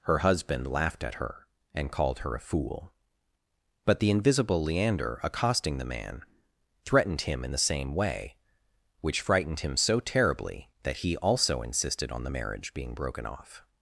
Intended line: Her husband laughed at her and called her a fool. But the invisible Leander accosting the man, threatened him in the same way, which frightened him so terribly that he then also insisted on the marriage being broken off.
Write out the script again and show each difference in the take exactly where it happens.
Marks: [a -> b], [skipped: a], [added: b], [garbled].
Her husband laughed at her and called her a fool. But the invisible Leander accosting the man, threatened him in the same way, which frightened him so terribly that he [skipped: then] also insisted on the marriage being broken off.